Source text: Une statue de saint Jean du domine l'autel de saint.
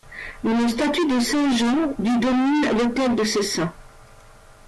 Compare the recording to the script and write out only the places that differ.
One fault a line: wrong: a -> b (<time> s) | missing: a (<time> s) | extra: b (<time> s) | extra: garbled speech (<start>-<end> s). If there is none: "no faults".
extra: ce (3.2 s)